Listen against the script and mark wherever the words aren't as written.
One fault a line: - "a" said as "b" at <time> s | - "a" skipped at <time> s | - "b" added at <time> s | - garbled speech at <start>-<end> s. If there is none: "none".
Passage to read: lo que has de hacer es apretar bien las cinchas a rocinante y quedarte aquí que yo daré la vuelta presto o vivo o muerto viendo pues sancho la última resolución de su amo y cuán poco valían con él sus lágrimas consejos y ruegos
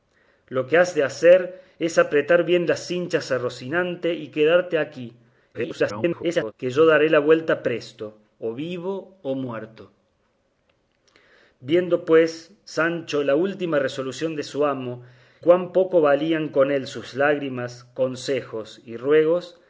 - garbled speech at 5.5-6.5 s
- "y" skipped at 15.0 s